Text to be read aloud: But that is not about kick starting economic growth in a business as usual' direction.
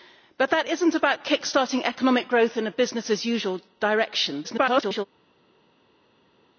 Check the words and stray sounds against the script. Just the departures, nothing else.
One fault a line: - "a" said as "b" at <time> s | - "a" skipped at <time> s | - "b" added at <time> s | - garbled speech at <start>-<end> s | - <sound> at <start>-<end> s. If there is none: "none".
- garbled speech at 4.4-5.1 s